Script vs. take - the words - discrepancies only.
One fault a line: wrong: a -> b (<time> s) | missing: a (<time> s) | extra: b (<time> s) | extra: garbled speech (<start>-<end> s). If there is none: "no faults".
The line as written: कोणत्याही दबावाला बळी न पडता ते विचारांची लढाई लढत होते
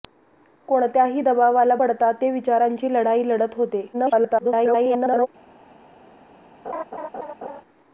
missing: बळी न (1.7 s)
extra: garbled speech (3.9-5.3 s)